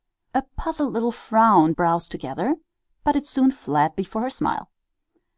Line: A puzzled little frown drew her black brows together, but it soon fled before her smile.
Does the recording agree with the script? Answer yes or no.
no